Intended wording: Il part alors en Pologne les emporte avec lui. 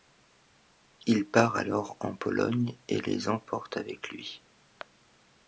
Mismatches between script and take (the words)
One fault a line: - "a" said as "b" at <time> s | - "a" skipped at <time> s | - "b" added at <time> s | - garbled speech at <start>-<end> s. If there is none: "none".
- "et" added at 2.9 s